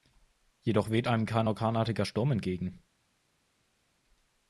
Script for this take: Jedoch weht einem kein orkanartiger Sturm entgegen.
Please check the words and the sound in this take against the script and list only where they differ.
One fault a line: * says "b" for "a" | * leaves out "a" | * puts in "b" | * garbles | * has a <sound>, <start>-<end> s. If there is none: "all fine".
all fine